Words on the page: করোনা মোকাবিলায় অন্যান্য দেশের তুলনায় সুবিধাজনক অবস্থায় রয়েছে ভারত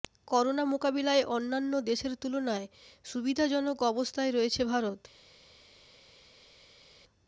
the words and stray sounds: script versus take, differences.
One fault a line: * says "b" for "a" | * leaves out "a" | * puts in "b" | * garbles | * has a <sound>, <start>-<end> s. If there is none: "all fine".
all fine